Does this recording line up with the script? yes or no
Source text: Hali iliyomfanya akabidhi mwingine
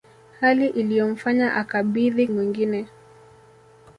yes